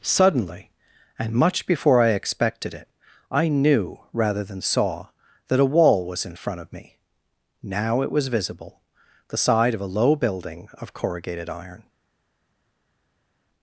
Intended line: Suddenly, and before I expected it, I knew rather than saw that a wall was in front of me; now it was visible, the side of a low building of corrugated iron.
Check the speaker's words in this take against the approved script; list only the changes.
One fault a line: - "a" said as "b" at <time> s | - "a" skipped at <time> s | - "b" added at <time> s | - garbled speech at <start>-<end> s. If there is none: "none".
- "much" added at 1.3 s